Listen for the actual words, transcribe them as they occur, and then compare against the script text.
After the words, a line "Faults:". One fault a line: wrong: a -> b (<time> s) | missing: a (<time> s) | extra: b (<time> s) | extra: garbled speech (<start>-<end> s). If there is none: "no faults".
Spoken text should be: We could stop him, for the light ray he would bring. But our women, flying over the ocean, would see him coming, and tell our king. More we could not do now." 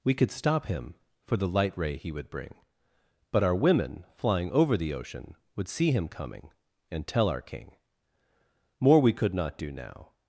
We could stop him, for the light ray he would bring. But our women, flying over the ocean, would see him coming, and tell our king. More we could not do now."
Faults:
no faults